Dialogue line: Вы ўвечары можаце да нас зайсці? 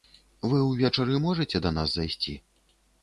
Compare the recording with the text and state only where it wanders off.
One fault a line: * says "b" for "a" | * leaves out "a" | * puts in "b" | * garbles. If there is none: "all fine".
all fine